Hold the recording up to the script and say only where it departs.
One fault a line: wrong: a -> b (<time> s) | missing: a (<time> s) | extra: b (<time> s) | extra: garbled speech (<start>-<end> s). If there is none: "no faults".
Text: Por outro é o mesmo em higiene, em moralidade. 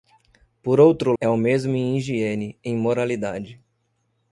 no faults